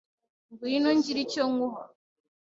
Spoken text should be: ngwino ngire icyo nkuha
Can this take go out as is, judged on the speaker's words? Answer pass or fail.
pass